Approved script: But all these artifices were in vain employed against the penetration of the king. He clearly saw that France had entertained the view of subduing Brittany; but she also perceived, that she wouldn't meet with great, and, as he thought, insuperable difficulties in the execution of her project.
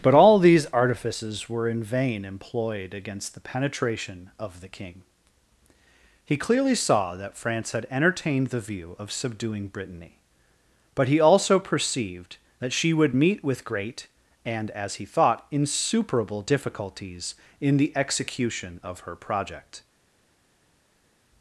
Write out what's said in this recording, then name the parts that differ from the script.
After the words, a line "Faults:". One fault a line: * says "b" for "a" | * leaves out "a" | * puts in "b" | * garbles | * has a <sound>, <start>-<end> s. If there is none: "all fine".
But all these artifices were in vain employed against the penetration of the king. He clearly saw that France had entertained the view of subduing Brittany; but he also perceived, that she would meet with great, and, as he thought, insuperable difficulties in the execution of her project.
Faults:
* says "he" for "she"
* says "would" for "wouldn't"